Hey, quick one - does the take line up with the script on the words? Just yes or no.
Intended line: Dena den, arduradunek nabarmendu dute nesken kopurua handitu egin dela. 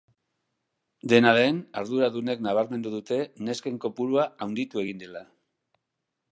yes